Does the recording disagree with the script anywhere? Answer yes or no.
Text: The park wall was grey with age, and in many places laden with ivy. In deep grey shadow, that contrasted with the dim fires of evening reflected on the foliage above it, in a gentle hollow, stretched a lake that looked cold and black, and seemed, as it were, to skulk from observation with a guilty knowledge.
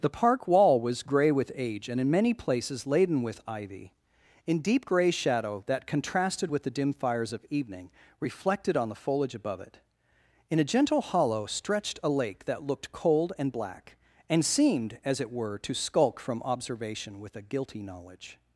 no